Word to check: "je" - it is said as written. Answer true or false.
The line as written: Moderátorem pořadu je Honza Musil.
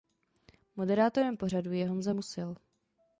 true